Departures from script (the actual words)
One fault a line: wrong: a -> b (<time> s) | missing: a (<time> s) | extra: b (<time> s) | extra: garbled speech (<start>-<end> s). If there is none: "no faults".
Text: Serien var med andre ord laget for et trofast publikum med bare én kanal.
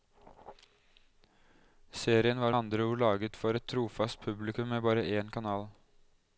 missing: med (2.5 s)